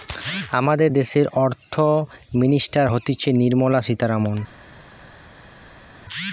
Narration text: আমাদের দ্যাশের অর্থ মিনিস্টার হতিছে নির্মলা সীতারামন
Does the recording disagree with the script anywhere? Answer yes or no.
no